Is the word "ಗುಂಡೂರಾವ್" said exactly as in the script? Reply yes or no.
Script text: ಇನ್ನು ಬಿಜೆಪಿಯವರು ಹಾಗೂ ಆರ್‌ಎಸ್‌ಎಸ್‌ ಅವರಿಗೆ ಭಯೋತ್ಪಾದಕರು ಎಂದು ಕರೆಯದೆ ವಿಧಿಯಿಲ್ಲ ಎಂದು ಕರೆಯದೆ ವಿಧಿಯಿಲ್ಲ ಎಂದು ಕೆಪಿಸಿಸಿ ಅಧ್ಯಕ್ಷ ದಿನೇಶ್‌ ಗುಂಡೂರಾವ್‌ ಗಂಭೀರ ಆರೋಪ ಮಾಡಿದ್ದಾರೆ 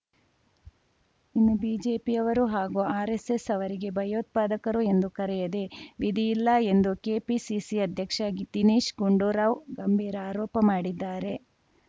yes